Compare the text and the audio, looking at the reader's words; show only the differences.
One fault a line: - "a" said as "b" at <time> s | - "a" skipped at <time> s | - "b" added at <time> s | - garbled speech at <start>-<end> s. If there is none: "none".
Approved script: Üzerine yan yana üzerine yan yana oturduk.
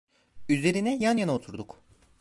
- "üzerine yan yana" skipped at 1.3 s